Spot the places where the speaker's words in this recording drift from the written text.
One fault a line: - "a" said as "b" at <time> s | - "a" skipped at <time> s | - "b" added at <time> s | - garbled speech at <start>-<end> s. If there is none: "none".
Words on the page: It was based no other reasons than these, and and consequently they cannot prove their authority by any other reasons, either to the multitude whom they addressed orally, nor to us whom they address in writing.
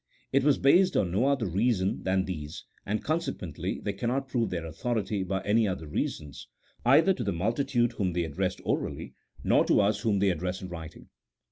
- "on" added at 1.0 s
- "and" skipped at 3.0 s